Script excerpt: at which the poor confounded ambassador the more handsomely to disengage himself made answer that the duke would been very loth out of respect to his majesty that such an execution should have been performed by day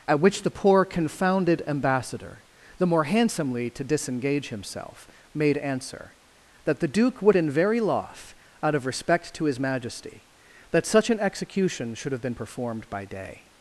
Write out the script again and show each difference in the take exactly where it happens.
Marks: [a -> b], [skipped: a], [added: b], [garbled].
at which the poor confounded ambassador the more handsomely to disengage himself made answer that the duke would been very loth out of respect to his majesty that such an execution should have been performed by day